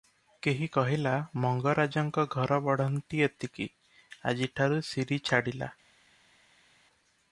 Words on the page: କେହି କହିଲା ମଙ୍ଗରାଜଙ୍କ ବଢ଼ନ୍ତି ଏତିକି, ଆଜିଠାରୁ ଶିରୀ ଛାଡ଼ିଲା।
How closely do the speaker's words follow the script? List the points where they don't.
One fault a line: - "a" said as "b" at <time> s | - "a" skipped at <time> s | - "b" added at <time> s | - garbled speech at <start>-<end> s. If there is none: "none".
- "ଘର" added at 2.3 s